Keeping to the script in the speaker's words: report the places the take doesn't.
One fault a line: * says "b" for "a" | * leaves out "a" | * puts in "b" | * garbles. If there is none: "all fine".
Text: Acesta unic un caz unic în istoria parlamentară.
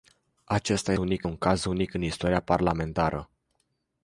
all fine